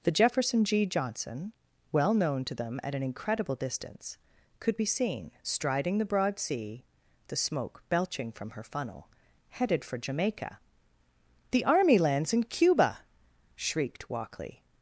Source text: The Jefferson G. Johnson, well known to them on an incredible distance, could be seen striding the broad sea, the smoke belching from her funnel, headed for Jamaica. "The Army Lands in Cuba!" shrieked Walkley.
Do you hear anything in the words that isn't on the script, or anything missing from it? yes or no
yes